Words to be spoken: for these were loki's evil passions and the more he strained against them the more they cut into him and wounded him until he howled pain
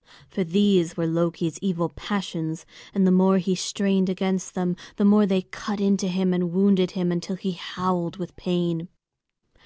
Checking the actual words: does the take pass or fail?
fail